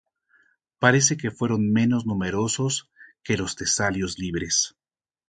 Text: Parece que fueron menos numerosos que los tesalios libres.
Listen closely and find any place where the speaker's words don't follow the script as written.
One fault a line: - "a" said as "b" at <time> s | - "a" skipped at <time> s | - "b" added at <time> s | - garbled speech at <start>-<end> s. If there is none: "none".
none